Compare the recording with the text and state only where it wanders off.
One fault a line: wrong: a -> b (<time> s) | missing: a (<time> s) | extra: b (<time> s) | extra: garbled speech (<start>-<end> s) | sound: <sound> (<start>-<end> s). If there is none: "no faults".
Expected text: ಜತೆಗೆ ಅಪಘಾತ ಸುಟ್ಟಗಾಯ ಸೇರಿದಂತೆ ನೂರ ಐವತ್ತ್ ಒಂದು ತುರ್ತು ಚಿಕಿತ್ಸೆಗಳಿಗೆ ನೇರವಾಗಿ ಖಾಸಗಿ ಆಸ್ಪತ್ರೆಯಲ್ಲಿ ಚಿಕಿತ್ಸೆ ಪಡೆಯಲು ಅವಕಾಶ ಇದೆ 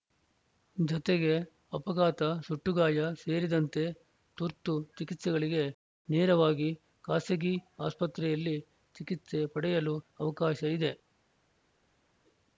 missing: ನೂರ ಐವತ್ತ್ ಒಂದು (3.8 s)